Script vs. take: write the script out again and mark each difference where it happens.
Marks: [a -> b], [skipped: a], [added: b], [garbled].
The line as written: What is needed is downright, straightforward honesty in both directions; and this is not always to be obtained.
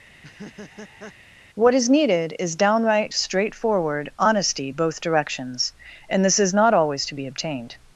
What is needed is downright, straightforward honesty [skipped: in] both directions; and this is not always to be obtained.